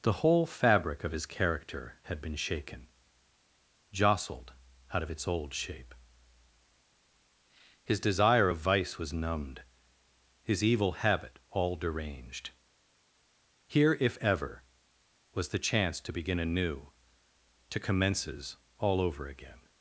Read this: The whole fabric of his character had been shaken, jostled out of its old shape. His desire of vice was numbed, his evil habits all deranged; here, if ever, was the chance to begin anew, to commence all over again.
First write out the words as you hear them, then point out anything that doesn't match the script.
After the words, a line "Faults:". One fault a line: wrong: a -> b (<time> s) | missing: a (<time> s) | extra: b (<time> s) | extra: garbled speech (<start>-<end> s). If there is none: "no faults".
The whole fabric of his character had been shaken, jostled out of its old shape. His desire of vice was numbed, his evil habit all deranged; here, if ever, was the chance to begin anew, to commences all over again.
Faults:
wrong: habits -> habit (10.9 s)
wrong: commence -> commences (17.8 s)